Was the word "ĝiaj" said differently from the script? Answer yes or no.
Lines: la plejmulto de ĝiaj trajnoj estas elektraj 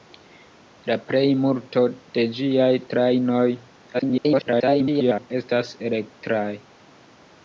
no